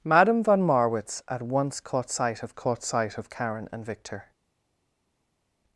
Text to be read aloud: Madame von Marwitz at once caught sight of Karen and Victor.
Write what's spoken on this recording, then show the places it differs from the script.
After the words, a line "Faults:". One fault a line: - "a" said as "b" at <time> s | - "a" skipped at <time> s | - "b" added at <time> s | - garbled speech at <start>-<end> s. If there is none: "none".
Madame von Marwitz at once caught sight of caught sight of Karen and Victor.
Faults:
- "caught sight of" added at 2.5 s